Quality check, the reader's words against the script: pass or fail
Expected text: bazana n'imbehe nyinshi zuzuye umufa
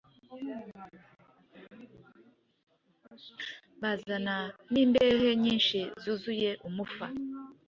pass